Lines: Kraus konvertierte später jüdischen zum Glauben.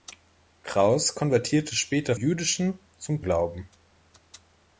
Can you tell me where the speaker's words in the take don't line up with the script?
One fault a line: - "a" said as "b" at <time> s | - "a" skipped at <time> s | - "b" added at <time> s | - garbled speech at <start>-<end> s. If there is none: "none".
none